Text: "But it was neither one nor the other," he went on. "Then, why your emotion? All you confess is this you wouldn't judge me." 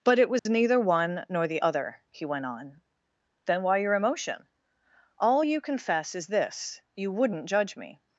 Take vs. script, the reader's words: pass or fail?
pass